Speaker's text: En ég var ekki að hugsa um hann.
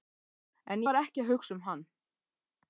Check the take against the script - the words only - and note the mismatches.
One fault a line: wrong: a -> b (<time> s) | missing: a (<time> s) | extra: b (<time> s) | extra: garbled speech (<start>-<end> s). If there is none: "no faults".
missing: ég (0.8 s)